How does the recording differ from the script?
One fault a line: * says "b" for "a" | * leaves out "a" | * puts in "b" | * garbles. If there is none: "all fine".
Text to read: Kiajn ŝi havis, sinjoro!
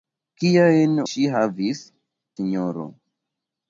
all fine